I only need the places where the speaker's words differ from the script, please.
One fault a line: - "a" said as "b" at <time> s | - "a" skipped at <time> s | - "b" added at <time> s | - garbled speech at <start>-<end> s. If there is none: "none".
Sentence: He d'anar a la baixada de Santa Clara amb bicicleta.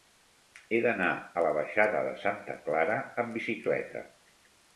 none